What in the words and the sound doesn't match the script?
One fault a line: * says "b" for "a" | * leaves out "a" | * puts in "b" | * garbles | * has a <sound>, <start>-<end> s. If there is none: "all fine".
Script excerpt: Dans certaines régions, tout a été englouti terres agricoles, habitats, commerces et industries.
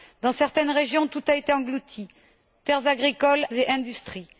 * leaves out "habitats commerces"